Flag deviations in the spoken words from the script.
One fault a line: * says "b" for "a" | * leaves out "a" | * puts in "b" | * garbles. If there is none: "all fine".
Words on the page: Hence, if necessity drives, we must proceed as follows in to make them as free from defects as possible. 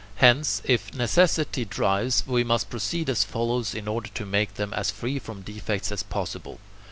* puts in "order"